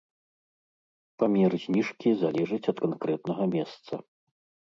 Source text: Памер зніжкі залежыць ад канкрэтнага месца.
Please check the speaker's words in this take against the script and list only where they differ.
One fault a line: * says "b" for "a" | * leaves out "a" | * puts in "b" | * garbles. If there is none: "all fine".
all fine